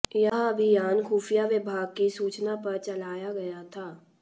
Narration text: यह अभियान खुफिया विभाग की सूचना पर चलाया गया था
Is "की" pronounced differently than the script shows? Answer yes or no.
no